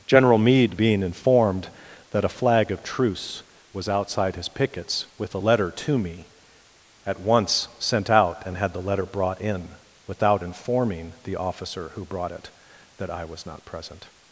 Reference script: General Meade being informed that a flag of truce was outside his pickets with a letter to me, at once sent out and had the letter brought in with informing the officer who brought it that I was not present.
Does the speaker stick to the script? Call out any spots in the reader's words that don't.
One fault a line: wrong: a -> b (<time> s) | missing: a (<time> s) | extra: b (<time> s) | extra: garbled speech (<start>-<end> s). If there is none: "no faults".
wrong: with -> without (10.1 s)